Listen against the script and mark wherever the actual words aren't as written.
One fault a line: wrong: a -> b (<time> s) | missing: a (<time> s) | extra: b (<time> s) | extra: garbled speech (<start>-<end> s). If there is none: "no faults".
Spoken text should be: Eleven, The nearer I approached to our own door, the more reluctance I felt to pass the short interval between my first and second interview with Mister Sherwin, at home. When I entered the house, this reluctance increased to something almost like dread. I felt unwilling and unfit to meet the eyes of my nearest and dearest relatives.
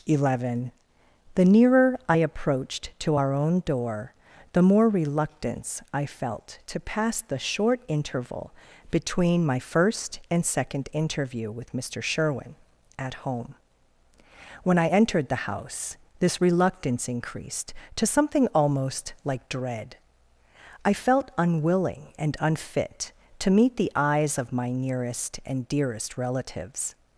no faults